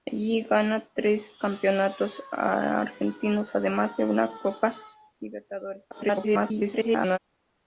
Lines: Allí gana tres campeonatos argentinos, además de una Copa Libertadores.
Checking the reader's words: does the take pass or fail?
fail